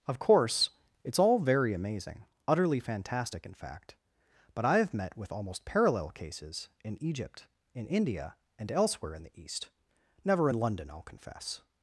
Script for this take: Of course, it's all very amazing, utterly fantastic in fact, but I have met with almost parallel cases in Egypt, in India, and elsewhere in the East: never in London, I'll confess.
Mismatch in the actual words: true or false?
false